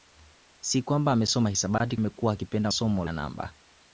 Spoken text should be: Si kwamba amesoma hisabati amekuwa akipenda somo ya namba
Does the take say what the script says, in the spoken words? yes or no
yes